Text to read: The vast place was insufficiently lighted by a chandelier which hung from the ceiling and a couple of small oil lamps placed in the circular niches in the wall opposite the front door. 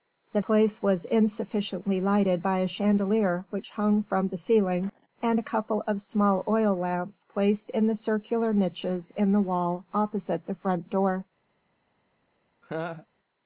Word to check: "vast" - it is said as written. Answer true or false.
false